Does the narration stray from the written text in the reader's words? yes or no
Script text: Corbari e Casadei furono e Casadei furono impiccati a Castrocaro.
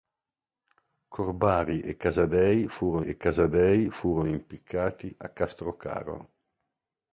no